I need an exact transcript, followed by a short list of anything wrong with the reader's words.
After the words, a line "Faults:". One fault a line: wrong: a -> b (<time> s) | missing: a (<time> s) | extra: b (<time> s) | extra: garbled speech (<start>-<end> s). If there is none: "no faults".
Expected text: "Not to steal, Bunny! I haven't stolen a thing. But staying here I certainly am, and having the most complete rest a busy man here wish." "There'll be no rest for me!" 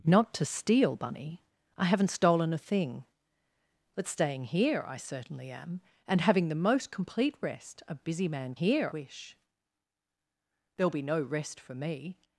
"Not to steal, Bunny! I haven't stolen a thing. But staying here I certainly am, and having the most complete rest a busy man here wish." "There'll be no rest for me!"
Faults:
no faults